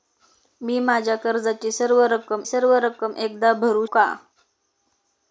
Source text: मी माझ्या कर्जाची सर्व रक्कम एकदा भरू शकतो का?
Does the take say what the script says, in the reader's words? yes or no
no